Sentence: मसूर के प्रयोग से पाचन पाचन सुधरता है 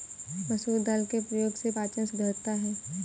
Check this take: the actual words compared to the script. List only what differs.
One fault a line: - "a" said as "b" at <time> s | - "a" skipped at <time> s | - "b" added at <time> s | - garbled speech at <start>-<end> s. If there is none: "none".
- "दाल" added at 0.8 s
- "पाचन" skipped at 2.1 s